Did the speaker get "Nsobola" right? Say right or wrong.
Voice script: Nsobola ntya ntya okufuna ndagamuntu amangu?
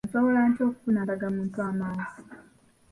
right